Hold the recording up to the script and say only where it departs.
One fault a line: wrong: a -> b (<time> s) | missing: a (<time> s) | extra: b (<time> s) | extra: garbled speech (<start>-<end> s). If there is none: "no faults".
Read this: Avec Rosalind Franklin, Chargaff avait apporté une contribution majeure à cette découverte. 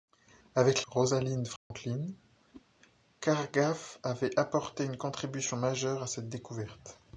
no faults